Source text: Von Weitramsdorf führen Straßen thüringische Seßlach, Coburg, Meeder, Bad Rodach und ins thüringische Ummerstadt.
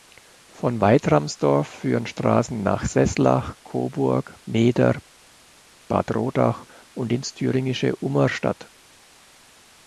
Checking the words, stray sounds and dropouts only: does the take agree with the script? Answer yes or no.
no